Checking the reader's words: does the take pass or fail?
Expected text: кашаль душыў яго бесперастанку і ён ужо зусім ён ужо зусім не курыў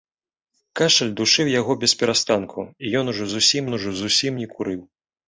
pass